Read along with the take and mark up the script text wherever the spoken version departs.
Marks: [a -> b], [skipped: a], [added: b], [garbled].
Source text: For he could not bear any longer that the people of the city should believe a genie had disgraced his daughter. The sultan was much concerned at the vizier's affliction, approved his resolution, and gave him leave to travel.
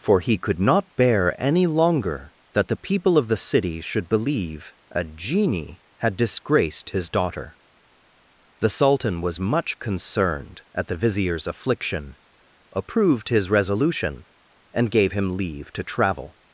For he could not bear any longer that the people of the city should believe a genie had disgraced his daughter. The sultan was much concerned at the vizier's affliction, approved his resolution, and gave him leave to travel.